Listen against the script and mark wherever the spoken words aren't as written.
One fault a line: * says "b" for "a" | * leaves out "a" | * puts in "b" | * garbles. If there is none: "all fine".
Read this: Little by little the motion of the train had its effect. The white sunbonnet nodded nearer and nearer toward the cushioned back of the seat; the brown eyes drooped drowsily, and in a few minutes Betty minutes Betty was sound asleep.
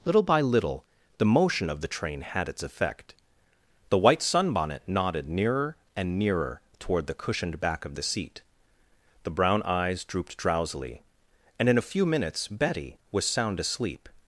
* leaves out "minutes Betty"